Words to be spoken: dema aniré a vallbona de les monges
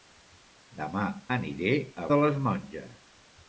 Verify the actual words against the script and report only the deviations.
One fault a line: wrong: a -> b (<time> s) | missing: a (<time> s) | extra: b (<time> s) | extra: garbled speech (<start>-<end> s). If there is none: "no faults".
missing: vallbona (2.1 s)